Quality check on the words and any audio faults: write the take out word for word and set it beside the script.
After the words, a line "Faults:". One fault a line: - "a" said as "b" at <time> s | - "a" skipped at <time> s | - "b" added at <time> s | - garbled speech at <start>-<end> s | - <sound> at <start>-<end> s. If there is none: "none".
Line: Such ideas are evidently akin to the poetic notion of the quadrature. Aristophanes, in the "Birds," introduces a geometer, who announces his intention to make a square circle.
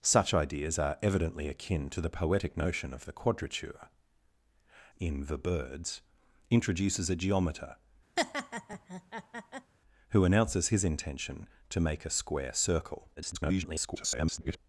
Such ideas are evidently akin to the poetic notion of the quadrature. In the "Birds," introduces a geometer, who announces his intention to make a square circle. [garbled]
Faults:
- "Aristophanes" skipped at 3.9 s
- laugh at 8.2-9.7 s
- garbled speech at 13.2-14.6 s